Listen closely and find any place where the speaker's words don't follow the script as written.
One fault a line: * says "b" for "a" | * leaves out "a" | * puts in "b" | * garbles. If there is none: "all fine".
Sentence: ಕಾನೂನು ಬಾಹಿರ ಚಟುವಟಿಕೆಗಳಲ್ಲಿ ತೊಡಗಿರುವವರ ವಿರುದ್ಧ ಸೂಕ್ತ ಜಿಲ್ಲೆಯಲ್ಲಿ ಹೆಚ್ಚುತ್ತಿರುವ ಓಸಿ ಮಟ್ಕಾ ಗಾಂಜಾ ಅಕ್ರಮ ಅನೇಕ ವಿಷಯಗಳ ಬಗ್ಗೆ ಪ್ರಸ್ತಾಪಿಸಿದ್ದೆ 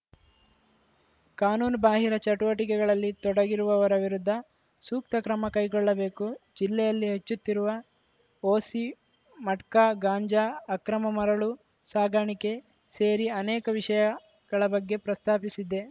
* puts in "ಕ್ರಮ ಕೈಗೊಳ್ಳಬೇಕು"
* puts in "ಮರಳು ಸಾಗಾಣಿಕೆ ಸೇರಿ"